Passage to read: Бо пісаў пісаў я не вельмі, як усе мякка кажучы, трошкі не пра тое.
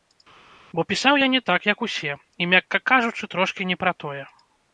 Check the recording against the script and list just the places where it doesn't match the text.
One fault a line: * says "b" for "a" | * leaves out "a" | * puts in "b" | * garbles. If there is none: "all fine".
* leaves out "пісаў"
* says "так" for "вельмі"
* puts in "і"